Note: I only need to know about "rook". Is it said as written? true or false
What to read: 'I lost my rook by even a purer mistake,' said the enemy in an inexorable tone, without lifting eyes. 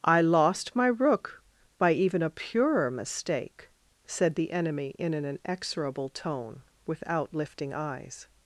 true